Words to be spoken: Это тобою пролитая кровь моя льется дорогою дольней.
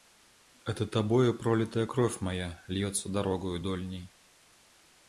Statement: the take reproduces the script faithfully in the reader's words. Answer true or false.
true